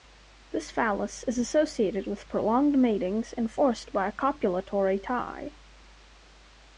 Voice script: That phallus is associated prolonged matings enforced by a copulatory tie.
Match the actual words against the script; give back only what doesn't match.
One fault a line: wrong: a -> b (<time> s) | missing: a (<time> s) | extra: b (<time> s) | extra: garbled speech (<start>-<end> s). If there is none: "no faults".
wrong: That -> This (0.5 s)
extra: with (2.1 s)